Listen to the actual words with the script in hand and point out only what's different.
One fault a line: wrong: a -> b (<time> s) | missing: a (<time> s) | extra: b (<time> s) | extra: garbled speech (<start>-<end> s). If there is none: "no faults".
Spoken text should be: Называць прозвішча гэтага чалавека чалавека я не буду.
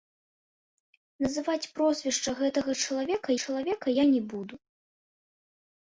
no faults